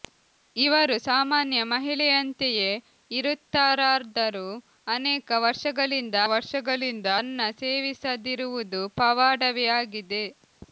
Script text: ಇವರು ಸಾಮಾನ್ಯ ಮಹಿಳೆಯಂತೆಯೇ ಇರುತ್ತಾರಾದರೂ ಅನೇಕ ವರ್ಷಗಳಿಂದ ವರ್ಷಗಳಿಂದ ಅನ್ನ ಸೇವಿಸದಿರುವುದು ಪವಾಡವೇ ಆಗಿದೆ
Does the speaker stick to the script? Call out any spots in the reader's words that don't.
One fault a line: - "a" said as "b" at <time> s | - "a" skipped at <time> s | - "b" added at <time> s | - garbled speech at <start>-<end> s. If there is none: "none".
none